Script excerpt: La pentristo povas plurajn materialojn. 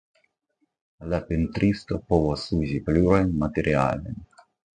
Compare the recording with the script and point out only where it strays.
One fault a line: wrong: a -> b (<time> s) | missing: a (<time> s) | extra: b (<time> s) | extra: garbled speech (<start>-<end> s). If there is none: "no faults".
extra: uzi (2.6 s)